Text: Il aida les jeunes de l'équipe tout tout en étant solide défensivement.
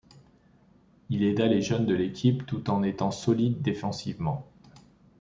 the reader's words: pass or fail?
fail